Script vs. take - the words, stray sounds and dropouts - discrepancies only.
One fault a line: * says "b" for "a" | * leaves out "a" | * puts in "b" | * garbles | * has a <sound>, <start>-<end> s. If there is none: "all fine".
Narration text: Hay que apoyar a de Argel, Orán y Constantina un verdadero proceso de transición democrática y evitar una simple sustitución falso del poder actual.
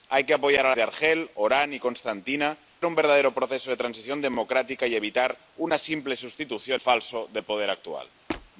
* has a squeak, 8.3-8.5 s